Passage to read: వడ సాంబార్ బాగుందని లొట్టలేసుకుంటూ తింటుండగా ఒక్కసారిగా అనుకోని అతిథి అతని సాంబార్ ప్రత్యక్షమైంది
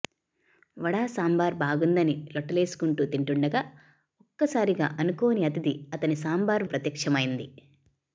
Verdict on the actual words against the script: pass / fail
pass